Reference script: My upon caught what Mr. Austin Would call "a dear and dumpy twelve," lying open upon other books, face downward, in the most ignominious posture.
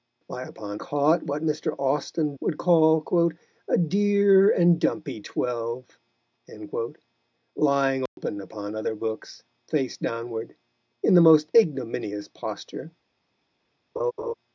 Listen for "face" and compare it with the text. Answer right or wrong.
right